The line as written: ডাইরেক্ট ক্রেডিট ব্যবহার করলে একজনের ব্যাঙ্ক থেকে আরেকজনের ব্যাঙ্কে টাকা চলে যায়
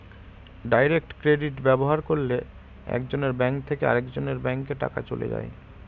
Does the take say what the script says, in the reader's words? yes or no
yes